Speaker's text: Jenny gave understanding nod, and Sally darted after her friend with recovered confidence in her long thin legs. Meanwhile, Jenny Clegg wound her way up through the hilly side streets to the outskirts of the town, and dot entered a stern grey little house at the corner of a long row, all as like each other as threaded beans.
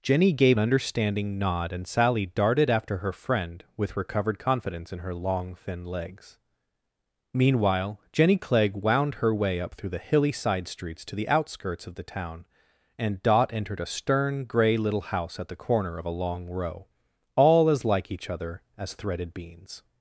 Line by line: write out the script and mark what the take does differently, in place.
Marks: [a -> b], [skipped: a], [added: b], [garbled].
Jenny gave understanding nod, and Sally darted after her friend with recovered confidence in her long thin legs. Meanwhile, Jenny Clegg wound her way up through the hilly side streets to the outskirts of the town, and dot entered a stern grey little house at the corner of a long row, all as like each other as threaded beans.